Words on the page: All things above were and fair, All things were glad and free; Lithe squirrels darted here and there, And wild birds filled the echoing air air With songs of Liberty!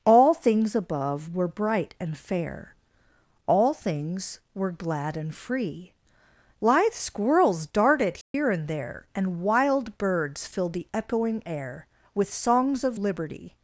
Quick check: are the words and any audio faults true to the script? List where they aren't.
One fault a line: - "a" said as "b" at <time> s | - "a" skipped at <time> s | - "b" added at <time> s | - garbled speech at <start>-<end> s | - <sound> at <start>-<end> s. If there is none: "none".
- "bright" added at 1.5 s
- dropout at 8.2-8.3 s
- "air" skipped at 11.9 s